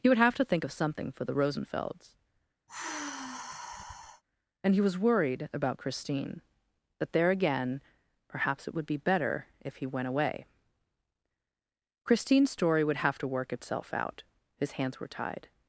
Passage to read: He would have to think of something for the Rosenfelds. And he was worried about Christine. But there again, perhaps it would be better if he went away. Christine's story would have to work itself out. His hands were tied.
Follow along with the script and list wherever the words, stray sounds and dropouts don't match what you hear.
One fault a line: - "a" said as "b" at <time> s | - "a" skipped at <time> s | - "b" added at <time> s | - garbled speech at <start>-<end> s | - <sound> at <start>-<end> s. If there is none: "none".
- sigh at 2.7-4.2 s
- "But" said as "That" at 7.0 s